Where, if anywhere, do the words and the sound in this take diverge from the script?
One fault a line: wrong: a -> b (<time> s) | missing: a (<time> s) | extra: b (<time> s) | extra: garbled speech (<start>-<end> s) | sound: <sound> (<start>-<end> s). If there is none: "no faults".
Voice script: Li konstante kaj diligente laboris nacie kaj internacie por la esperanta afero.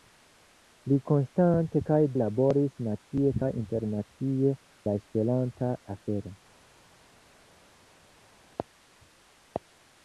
missing: diligente (2.0 s)
missing: por (4.5 s)